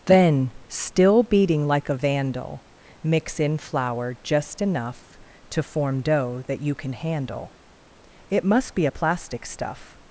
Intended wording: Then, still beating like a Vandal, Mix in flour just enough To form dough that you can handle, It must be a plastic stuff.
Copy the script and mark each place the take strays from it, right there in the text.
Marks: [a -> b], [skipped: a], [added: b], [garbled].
Then, still beating like a Vandal, Mix in flour just enough To form dough that you can handle, It must be a plastic stuff.